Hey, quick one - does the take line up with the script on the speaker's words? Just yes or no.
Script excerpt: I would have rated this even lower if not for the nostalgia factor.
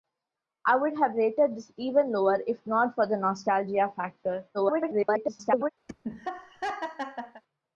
no